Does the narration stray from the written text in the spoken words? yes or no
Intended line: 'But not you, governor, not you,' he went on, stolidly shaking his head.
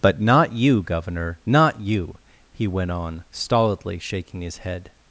no